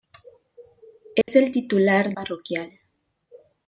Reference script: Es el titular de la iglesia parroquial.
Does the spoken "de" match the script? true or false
false